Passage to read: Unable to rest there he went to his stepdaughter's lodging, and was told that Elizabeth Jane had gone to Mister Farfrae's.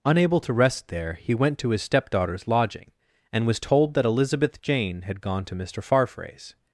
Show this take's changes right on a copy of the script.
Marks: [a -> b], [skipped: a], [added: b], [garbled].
Unable to rest there he went to his stepdaughter's lodging, and was told that Elizabeth Jane had gone to Mister Farfrae's.